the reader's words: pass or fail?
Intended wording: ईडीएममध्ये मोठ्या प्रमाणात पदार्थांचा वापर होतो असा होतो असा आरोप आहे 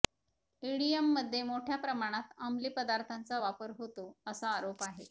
fail